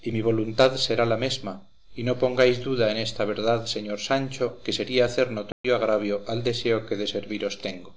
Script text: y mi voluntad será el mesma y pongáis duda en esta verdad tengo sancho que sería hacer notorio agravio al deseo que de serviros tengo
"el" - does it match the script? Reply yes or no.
no